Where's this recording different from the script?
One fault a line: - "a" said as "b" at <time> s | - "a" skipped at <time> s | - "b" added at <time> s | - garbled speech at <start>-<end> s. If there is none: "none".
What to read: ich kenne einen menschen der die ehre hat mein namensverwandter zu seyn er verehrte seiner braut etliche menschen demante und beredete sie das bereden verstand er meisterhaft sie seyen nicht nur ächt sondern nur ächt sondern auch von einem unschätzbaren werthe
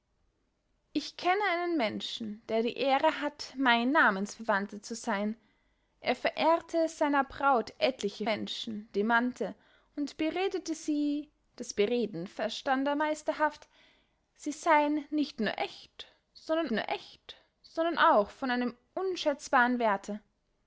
none